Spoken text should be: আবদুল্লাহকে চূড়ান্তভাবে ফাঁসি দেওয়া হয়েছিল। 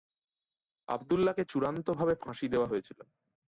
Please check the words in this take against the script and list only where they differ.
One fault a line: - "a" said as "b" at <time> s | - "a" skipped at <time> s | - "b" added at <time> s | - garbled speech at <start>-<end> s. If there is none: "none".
none